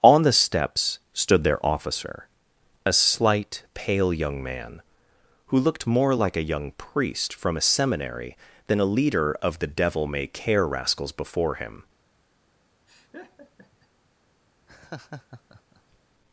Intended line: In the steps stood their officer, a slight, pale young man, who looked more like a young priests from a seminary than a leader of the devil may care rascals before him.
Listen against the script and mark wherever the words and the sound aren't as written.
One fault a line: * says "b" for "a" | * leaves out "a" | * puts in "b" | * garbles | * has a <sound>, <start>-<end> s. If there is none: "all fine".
* says "On" for "In"
* says "priest" for "priests"
* has a laugh, 12.9-13.9 s
* has a laugh, 14.7-16.0 s